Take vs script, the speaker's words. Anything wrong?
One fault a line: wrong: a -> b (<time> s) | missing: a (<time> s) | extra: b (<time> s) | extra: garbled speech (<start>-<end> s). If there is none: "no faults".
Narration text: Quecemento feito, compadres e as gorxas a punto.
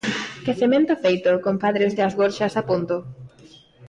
no faults